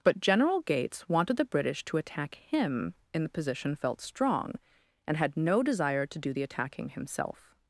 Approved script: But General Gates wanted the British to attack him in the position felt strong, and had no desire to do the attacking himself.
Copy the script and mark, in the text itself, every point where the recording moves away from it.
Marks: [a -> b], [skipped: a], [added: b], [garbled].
But General Gates wanted the British to attack him in the position felt strong, and had no desire to do the attacking himself.